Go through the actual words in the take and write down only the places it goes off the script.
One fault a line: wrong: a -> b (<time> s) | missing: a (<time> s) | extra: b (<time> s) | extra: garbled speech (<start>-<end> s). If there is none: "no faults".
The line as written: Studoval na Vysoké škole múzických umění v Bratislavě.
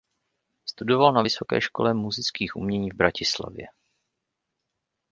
no faults